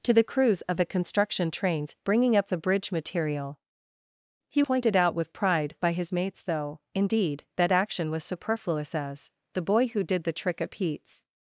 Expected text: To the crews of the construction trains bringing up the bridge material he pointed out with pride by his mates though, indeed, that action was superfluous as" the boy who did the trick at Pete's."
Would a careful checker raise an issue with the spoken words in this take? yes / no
no